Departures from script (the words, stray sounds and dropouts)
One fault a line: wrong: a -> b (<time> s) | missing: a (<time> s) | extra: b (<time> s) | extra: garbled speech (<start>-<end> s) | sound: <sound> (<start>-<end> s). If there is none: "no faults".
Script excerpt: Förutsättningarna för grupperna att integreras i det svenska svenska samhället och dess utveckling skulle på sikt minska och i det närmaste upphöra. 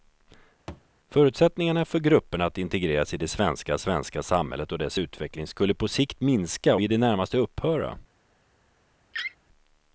sound: thud (0.7-0.9 s)
missing: och (6.8 s)
sound: laugh (9.1-9.4 s)